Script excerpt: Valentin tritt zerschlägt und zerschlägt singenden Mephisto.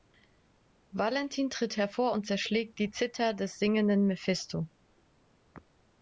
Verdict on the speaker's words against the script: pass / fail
fail